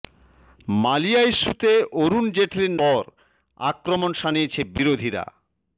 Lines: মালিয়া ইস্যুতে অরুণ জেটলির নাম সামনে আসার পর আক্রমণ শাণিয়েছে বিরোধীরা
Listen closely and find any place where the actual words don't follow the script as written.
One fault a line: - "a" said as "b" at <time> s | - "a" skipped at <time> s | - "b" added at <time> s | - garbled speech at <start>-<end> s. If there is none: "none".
- "নাম সামনে আসার" skipped at 2.7 s